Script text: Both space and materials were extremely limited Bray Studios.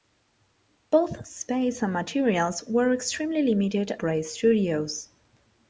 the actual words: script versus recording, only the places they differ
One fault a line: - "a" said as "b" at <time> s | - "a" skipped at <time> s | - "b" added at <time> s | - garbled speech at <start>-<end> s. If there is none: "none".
none